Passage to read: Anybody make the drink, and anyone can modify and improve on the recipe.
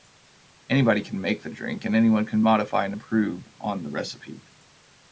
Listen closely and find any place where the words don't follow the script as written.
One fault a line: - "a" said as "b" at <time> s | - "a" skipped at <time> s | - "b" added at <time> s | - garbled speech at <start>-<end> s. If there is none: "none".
- "can" added at 1.0 s